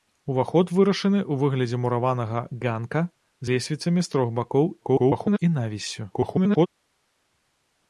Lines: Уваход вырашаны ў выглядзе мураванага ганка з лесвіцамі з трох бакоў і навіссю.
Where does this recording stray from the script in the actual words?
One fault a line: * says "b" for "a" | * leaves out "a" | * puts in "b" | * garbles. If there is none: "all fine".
* leaves out "з"
* garbles
* garbles